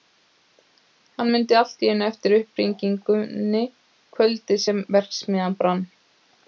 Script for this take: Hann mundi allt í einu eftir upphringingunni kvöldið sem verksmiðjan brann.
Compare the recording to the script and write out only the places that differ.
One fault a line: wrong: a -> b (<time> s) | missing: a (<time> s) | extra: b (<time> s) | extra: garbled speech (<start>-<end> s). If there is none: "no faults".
no faults